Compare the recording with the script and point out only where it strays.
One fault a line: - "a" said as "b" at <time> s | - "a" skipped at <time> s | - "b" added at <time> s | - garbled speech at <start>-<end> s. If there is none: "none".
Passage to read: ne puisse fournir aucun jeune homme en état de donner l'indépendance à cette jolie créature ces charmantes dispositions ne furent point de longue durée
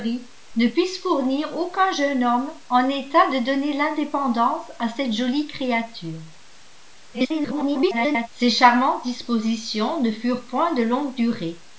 - garbled speech at 7.1-8.3 s